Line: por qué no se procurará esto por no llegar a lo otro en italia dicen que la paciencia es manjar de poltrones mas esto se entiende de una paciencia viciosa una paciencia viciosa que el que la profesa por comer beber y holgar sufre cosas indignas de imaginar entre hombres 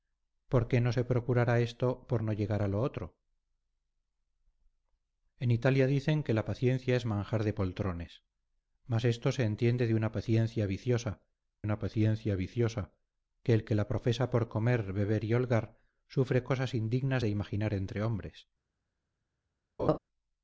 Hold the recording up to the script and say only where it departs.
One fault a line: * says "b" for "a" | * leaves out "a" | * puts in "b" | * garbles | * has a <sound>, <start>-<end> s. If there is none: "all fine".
* has a laugh, 19.8-20.0 s